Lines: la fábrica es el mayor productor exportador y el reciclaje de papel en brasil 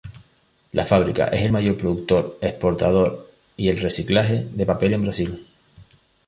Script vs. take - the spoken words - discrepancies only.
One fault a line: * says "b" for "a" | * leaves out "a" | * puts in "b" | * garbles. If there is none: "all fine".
all fine